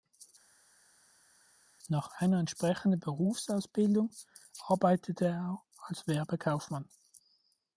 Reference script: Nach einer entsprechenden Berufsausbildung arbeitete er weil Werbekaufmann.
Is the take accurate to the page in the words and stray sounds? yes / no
no